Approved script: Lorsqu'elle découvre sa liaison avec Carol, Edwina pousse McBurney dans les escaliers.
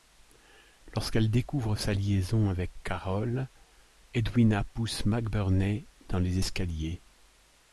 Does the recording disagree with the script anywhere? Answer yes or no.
no